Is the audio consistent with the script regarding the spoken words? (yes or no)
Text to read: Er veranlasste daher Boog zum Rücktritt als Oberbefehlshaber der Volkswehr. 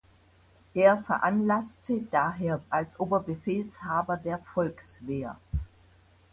no